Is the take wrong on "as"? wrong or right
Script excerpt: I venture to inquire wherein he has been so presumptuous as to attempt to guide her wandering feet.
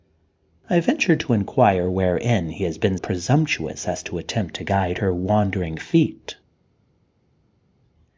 right